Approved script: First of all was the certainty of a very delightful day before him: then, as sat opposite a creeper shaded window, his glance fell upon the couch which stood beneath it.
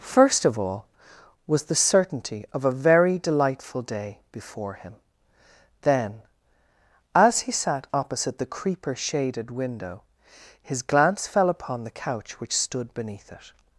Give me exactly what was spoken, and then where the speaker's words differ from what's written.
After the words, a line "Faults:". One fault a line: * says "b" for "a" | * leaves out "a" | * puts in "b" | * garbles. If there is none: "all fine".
First of all was the certainty of a very delightful day before him: then, as he sat opposite the creeper shaded window, his glance fell upon the couch which stood beneath it.
Faults:
* puts in "he"
* says "the" for "a"